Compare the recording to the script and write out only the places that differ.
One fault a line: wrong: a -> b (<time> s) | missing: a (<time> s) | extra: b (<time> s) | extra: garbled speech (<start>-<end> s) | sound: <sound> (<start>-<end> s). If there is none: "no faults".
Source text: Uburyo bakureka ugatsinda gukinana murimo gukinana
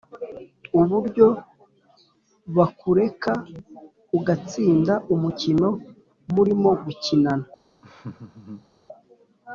wrong: gukinana -> umukino (5.1 s)
sound: laugh (7.8-8.7 s)